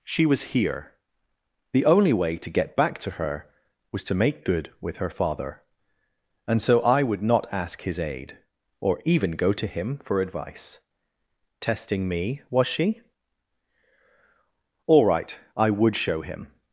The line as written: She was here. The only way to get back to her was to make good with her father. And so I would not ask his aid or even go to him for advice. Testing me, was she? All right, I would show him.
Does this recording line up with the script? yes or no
yes